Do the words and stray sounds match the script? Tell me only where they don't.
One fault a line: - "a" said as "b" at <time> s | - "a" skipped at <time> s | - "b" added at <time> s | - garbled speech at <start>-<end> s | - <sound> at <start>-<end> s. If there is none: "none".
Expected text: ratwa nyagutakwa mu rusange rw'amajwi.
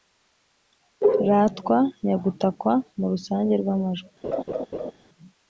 - laugh at 4.2-4.9 s